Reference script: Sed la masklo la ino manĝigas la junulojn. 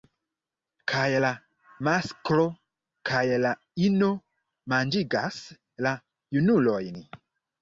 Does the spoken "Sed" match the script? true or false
false